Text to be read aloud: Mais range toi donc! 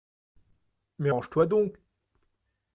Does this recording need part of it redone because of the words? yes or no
no